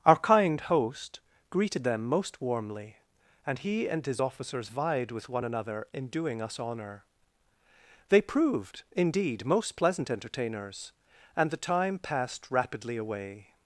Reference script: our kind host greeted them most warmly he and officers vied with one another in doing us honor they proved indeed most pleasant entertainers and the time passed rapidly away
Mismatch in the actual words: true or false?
true